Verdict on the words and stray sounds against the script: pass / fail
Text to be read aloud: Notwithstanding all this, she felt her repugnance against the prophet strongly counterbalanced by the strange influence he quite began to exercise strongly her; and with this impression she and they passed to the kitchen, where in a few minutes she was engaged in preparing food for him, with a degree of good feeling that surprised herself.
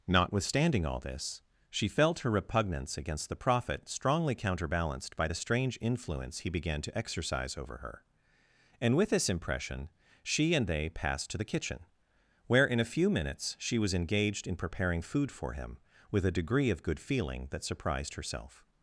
fail